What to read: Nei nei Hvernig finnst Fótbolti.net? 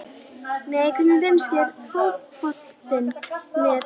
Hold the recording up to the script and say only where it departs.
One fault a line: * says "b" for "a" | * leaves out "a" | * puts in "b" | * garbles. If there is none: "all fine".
* leaves out "nei"
* puts in "þér"